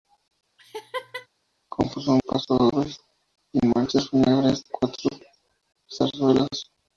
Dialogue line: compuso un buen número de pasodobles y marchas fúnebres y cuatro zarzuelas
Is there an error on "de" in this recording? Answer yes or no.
yes